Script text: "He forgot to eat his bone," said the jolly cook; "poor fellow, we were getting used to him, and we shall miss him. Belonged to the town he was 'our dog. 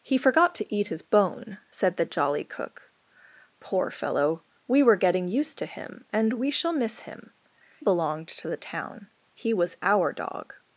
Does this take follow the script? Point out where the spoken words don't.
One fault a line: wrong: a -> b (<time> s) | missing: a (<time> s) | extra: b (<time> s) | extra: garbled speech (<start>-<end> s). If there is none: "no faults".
no faults